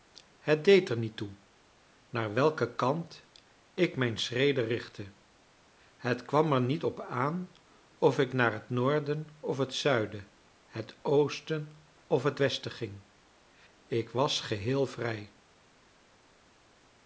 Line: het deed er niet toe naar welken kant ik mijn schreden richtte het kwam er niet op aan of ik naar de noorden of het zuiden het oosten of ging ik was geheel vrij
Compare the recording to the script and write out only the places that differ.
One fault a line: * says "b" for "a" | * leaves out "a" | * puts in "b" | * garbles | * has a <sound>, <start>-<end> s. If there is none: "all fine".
* says "het" for "de"
* puts in "het westen"